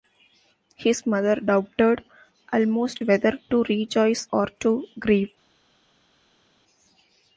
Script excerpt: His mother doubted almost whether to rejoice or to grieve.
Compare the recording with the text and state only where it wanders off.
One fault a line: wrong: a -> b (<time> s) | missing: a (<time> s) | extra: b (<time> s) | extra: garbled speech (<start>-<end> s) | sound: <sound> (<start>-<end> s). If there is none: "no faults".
no faults